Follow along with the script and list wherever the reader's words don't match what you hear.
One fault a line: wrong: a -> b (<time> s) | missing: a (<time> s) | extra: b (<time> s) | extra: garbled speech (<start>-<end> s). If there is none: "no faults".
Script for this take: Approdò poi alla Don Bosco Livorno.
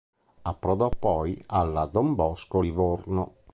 no faults